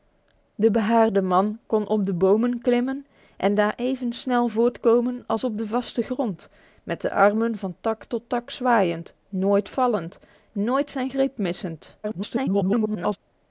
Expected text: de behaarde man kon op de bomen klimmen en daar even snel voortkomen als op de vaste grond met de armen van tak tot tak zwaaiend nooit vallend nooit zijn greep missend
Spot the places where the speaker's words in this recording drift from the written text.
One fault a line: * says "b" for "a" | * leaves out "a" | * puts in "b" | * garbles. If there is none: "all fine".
* garbles